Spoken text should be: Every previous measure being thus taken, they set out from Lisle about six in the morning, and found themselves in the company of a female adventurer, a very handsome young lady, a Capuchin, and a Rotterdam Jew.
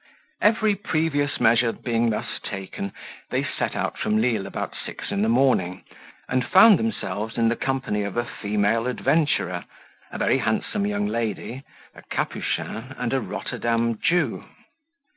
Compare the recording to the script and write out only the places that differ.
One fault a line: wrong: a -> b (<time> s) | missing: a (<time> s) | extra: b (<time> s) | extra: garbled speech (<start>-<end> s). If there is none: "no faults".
no faults